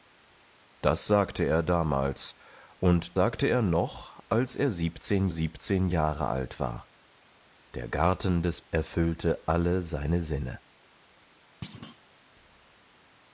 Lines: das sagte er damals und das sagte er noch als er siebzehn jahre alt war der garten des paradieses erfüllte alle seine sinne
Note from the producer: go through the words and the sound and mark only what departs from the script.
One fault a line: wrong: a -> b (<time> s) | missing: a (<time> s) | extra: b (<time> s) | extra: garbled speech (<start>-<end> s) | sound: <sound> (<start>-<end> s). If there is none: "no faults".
missing: das (3.2 s)
extra: siebzehn (5.3 s)
missing: paradieses (8.6 s)
sound: thud (11.6-12.0 s)